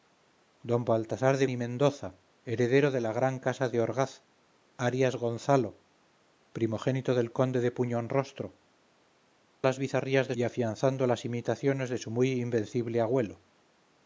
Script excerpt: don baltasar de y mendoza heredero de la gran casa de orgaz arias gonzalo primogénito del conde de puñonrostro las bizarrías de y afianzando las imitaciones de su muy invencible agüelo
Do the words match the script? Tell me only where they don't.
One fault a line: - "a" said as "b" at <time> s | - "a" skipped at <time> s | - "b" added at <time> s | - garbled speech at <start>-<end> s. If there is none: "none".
none